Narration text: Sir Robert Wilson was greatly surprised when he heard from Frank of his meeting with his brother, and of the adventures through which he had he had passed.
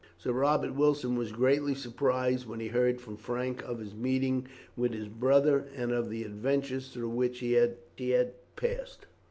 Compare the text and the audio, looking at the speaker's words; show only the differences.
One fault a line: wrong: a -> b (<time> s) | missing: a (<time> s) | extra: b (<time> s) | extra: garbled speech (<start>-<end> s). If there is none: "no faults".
no faults